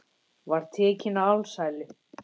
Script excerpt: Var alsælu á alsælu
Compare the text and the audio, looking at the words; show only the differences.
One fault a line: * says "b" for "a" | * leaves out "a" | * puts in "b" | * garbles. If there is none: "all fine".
* says "tekinn" for "alsælu"